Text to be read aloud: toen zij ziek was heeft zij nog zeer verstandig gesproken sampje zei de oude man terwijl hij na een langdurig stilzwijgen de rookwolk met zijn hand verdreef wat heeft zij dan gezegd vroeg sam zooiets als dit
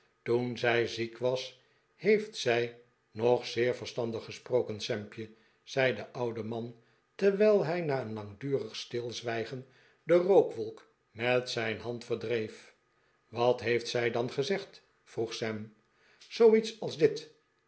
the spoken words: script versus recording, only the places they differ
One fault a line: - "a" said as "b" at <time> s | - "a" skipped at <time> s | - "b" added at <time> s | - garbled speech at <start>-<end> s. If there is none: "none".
none